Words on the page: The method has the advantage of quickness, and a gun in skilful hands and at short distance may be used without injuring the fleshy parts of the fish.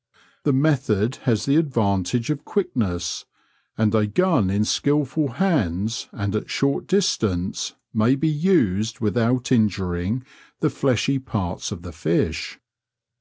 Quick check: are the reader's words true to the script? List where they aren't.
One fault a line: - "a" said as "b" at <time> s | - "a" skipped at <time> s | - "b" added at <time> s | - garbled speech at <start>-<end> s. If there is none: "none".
none